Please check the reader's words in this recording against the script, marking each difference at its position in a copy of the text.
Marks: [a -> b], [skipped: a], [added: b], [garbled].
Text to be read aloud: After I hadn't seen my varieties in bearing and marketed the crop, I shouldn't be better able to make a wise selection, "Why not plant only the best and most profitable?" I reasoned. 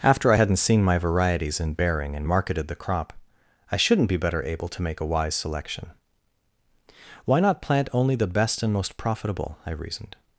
After I hadn't seen my varieties in bearing and marketed the crop, I shouldn't be better able to make a wise selection, "Why not plant only the best and most profitable?" I reasoned.